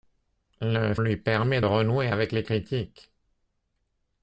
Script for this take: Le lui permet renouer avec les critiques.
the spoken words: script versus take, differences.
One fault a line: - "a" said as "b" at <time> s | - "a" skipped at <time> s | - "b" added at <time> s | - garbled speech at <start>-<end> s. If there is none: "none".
none